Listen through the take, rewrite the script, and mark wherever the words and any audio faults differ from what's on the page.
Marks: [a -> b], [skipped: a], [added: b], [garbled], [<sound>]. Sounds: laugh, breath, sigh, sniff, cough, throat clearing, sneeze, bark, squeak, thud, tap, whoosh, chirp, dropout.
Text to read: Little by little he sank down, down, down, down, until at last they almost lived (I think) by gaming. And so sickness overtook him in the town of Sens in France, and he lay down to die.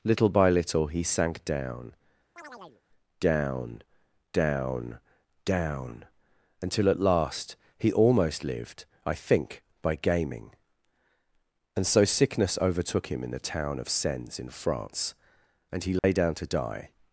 Little by little he sank down, [chirp] down, down, down, until at last [they -> he] almost lived (I think) by gaming. And so sickness overtook him in the town of Sens in France, and he lay [dropout] down to die.